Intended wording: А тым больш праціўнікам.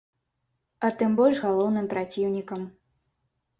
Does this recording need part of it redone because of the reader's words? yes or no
yes